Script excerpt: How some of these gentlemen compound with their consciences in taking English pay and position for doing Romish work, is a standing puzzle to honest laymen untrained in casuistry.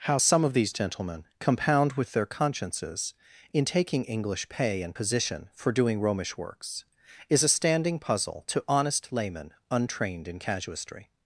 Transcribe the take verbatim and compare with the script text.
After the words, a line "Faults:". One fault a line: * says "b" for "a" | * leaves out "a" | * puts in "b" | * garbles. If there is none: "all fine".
How some of these gentlemen compound with their consciences in taking English pay and position for doing Romish works, is a standing puzzle to honest laymen untrained in casuistry.
Faults:
* says "works" for "work"